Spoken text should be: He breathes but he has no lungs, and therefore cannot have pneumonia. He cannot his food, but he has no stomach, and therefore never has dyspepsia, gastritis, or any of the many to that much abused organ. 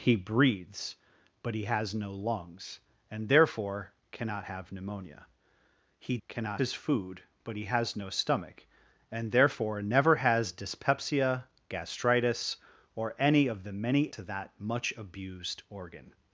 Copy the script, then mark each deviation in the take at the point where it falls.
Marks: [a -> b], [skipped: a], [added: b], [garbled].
He breathes but he has no lungs, and therefore cannot have pneumonia. He cannot his food, but he has no stomach, and therefore never has dyspepsia, gastritis, or any of the many to that much abused organ.